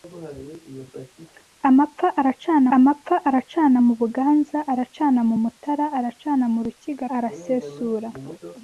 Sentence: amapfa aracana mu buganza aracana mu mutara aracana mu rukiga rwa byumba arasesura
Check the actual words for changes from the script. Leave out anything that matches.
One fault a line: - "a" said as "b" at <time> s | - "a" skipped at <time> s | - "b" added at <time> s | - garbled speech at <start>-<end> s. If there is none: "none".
- "amapfa aracana" added at 2.8 s
- "rwa byumba" skipped at 7.0 s